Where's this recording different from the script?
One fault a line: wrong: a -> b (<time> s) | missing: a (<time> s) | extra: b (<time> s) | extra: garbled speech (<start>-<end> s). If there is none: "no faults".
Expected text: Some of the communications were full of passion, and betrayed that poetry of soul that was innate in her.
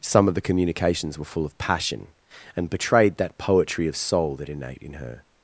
missing: was (4.5 s)